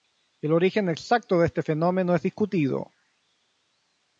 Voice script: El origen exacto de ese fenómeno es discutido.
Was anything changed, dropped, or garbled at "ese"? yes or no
yes